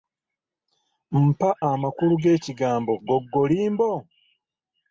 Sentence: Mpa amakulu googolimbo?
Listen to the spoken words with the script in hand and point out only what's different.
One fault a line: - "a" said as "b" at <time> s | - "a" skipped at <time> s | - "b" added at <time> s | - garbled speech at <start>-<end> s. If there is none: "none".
- "g'ekigambo" added at 2.2 s